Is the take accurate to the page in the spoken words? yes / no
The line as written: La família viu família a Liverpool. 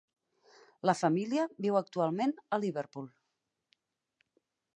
no